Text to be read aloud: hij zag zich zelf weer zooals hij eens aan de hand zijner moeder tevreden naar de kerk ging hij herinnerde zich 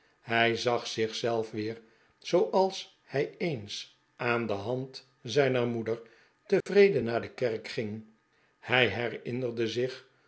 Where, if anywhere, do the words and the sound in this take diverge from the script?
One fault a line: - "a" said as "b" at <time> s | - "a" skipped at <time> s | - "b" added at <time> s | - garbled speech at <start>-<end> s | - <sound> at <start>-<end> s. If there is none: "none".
- dropout at 6.6-6.7 s